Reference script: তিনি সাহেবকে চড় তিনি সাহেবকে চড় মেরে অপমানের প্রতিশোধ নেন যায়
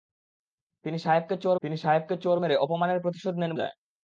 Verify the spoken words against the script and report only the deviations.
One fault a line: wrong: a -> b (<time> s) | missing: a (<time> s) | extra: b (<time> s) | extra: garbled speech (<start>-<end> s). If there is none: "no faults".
no faults